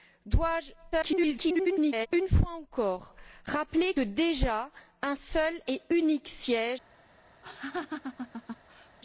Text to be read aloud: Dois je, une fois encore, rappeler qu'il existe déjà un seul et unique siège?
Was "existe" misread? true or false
true